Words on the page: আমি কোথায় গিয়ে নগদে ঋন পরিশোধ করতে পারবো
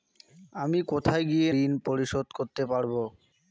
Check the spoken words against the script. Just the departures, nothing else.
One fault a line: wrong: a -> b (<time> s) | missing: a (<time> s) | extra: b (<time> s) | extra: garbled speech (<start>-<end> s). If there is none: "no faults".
missing: নগদে (1.5 s)